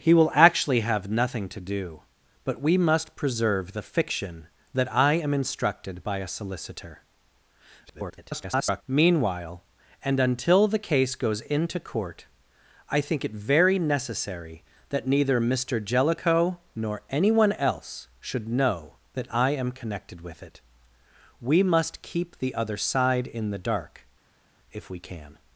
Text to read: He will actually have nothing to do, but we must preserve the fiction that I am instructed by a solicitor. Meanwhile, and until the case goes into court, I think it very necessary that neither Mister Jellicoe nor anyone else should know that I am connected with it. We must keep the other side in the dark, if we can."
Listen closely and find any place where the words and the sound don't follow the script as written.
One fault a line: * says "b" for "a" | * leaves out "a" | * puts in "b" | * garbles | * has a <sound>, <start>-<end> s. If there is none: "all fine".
* garbles